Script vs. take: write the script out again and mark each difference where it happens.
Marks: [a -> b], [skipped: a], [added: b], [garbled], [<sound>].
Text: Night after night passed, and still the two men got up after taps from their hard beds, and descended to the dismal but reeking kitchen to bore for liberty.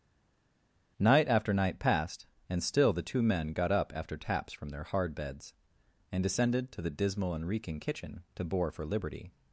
Night after night passed, and still the two men got up after taps from their hard beds, and descended to the dismal [but -> and] reeking kitchen to bore for liberty.